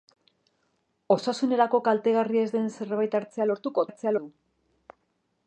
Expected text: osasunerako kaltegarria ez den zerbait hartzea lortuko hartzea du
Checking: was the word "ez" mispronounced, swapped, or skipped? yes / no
no